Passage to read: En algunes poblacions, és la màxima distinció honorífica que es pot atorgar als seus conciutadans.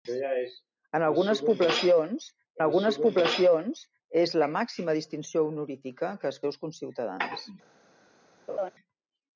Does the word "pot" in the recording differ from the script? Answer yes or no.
yes